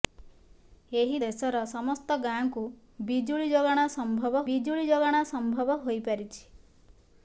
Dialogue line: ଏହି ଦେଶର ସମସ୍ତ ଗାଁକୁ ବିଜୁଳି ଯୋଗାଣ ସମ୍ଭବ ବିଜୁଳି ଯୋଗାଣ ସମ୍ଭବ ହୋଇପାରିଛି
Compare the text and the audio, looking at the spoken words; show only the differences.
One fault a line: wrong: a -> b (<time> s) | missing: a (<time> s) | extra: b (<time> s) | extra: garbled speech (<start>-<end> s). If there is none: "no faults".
no faults